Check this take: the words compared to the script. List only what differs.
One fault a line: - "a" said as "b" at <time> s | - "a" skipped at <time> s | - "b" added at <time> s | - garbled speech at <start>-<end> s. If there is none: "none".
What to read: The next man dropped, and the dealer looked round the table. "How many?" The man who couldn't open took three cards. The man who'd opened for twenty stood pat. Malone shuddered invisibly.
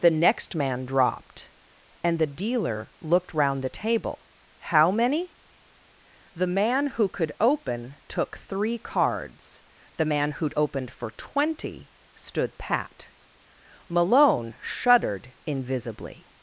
- "couldn't" said as "could" at 7.1 s